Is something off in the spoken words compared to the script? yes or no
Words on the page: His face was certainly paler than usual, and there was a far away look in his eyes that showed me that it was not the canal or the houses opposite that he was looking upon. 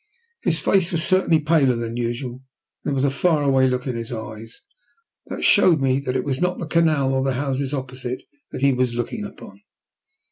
no